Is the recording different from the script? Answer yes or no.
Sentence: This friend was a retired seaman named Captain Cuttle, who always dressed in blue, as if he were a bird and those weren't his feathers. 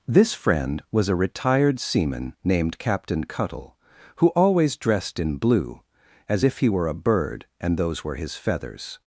yes